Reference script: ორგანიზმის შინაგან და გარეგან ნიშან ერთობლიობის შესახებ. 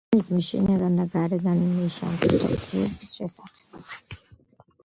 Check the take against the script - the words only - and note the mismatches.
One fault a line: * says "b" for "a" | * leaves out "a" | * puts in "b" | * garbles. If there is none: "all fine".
all fine